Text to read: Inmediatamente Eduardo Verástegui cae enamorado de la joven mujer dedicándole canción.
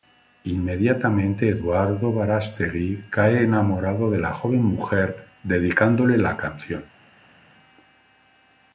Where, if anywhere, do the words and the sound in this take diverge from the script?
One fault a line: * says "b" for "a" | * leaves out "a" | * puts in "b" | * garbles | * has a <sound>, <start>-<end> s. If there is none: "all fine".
* puts in "la"